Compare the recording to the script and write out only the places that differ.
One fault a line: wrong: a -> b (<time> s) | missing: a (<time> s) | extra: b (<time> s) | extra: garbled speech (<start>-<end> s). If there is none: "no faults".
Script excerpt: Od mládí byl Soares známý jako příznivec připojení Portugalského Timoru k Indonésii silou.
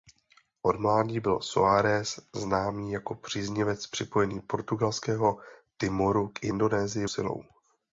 no faults